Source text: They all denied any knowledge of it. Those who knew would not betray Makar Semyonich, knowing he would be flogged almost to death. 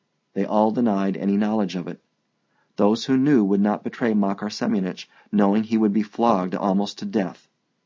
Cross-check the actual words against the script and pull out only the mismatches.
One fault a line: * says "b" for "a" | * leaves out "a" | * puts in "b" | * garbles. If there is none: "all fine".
all fine